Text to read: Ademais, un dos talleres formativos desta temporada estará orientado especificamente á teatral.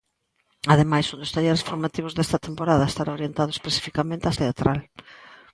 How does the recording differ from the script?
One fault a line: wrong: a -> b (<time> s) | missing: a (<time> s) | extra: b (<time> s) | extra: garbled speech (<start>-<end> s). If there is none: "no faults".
no faults